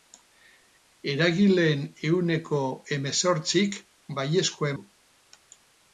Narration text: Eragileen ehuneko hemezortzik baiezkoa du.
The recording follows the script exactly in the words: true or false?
true